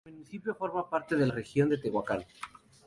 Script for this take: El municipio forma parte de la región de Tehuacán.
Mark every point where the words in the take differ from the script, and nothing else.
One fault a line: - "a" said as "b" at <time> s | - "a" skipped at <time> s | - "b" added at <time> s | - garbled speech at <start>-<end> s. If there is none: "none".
- "la" skipped at 1.3 s